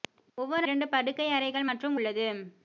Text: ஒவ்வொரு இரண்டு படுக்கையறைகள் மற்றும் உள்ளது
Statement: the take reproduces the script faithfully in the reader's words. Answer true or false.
true